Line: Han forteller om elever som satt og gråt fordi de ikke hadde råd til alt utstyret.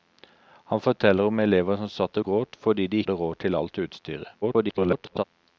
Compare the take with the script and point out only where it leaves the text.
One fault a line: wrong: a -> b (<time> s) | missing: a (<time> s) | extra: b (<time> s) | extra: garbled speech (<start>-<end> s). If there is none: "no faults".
missing: ikke (3.0 s)
extra: garbled speech (4.4-5.2 s)